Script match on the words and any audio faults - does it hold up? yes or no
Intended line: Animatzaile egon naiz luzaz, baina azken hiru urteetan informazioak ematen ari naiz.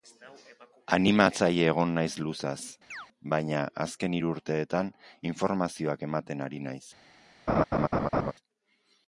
no